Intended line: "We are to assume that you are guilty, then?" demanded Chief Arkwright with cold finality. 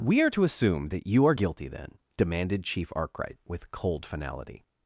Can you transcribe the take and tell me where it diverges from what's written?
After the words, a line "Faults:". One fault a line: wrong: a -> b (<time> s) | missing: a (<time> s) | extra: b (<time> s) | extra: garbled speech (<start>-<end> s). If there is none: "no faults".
"We are to assume that you are guilty, then?" demanded Chief Arkwright with cold finality.
Faults:
no faults